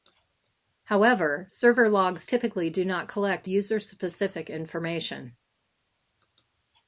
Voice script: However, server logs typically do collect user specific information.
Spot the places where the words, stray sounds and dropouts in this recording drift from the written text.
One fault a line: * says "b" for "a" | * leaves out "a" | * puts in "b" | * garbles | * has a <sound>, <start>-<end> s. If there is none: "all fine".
* puts in "not"